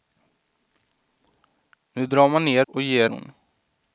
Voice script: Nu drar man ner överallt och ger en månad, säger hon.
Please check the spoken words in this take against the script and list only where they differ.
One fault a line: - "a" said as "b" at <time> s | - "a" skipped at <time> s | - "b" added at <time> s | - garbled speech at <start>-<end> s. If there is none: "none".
- "överallt" skipped at 2.7 s
- "en månad säger" skipped at 3.1 s